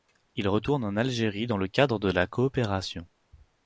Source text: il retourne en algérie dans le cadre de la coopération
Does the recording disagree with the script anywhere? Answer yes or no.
no